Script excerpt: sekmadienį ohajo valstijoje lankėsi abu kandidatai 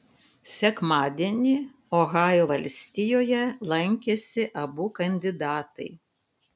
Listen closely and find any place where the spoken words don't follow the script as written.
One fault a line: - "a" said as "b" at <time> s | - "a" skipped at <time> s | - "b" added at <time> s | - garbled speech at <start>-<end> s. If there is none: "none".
none